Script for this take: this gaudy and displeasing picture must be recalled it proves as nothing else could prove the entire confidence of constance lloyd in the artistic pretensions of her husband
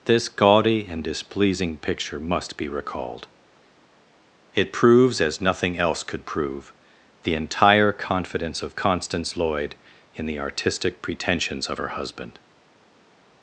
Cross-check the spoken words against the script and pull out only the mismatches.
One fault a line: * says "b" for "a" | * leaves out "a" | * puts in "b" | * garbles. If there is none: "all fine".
all fine